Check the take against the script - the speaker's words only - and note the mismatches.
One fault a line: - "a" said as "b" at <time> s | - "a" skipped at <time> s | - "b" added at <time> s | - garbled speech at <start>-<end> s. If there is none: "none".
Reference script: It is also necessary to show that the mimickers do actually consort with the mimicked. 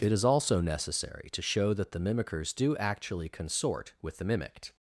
none